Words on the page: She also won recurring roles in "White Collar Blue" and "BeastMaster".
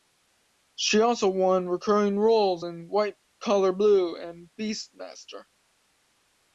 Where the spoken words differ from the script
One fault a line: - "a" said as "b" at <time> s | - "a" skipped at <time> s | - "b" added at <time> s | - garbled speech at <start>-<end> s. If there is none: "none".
none